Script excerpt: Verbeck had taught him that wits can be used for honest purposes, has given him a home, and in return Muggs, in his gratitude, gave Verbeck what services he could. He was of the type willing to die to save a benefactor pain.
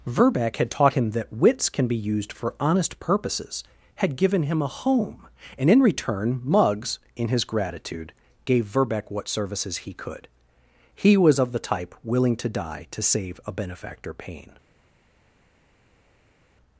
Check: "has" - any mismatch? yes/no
yes